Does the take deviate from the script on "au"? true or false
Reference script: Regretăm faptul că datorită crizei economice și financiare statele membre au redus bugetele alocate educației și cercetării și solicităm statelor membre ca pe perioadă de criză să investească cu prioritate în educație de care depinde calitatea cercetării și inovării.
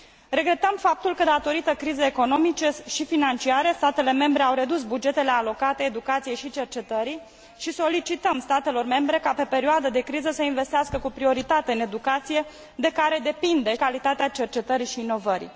false